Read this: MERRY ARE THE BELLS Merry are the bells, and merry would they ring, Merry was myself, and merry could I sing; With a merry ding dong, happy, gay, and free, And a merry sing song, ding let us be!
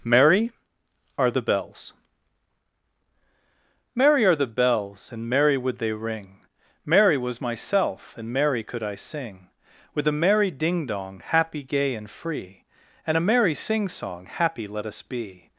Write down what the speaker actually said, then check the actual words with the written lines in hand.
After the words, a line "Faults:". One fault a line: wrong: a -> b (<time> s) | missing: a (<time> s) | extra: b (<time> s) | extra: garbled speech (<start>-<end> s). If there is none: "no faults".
MERRY ARE THE BELLS Merry are the bells, and merry would they ring, Merry was myself, and merry could I sing; With a merry ding dong, happy, gay, and free, And a merry sing song, happy let us be!
Faults:
wrong: ding -> happy (14.3 s)